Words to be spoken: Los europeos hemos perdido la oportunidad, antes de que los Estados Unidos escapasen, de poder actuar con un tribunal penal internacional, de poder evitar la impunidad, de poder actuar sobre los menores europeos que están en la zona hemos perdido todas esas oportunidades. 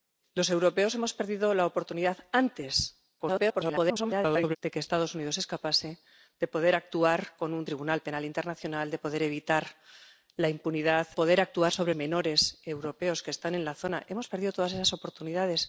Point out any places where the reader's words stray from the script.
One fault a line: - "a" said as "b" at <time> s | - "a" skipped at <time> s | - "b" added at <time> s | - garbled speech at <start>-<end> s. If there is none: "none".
- garbled speech at 3.2-4.6 s
- "de" skipped at 11.1 s
- "los" skipped at 11.9 s